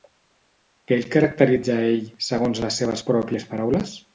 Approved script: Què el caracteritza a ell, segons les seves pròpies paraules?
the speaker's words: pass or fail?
pass